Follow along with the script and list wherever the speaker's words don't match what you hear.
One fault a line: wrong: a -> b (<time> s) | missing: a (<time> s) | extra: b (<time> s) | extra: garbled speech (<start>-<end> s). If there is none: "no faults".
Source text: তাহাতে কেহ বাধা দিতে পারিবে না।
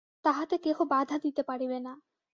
no faults